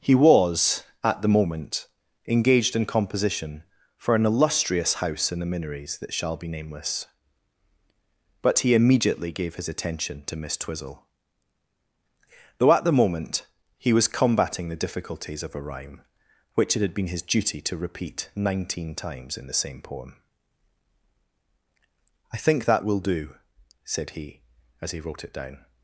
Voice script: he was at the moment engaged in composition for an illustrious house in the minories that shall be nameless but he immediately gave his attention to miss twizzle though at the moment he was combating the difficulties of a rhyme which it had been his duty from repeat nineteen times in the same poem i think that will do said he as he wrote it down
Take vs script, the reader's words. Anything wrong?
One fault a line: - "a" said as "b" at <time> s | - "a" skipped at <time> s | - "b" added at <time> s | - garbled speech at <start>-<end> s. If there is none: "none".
- "from" said as "to" at 17.6 s